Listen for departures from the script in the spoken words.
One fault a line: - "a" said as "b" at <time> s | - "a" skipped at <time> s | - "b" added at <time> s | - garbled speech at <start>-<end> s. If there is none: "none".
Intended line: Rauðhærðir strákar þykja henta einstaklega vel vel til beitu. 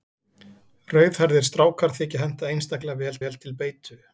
none